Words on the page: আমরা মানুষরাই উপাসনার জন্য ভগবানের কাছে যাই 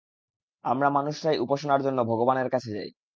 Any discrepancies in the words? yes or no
no